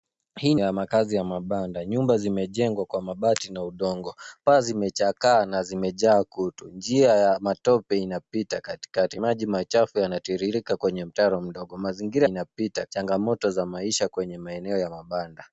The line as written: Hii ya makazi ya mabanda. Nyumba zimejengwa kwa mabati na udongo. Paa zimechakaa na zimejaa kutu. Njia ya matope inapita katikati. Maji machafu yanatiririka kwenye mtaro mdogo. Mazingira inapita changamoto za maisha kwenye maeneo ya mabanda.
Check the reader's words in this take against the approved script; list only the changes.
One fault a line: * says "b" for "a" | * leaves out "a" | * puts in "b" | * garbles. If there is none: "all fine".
all fine